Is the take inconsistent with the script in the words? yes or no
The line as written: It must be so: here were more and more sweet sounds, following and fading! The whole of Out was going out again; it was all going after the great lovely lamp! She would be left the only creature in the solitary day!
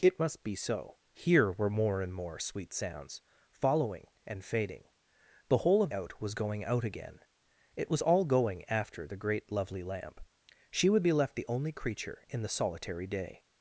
no